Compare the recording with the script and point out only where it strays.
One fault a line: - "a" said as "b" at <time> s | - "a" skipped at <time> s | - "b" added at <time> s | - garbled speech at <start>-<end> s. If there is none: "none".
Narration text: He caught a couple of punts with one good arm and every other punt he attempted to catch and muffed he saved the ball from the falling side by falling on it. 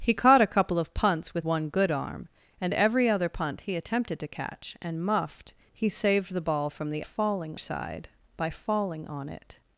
none